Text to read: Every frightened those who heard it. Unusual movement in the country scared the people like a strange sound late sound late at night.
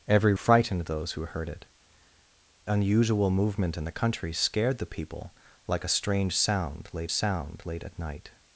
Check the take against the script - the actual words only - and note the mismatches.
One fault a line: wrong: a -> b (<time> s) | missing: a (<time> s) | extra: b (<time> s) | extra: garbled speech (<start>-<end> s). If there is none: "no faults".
no faults